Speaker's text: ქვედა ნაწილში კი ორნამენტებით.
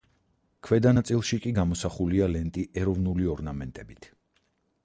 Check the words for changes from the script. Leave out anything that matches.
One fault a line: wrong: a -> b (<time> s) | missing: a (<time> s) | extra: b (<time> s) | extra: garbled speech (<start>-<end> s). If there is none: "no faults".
extra: გამოსახულია ლენტი ეროვნული (1.6 s)